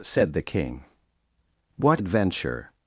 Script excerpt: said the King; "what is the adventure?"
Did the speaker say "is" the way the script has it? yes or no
no